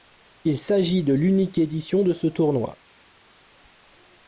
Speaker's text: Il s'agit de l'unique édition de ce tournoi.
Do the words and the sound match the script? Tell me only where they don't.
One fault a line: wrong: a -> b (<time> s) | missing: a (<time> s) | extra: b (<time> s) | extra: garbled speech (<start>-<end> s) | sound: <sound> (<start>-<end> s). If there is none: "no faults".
no faults